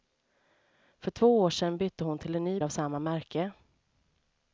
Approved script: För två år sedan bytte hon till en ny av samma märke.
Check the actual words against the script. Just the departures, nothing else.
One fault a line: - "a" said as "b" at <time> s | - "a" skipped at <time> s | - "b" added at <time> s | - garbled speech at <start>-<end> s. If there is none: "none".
none